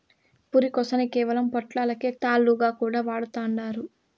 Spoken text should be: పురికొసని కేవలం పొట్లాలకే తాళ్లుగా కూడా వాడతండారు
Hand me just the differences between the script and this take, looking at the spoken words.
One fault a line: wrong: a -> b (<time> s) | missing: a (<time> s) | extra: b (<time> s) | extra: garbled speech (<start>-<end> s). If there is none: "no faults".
no faults